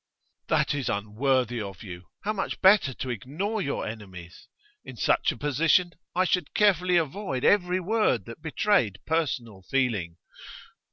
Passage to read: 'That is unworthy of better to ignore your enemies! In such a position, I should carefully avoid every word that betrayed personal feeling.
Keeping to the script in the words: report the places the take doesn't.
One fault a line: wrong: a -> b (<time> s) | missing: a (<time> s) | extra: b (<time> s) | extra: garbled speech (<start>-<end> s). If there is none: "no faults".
extra: you How much (1.8 s)